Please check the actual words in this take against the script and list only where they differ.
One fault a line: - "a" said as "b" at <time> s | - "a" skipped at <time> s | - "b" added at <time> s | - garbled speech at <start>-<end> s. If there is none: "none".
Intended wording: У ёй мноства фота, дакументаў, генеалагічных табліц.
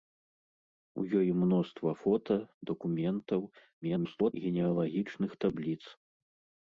- garbled speech at 3.8-4.3 s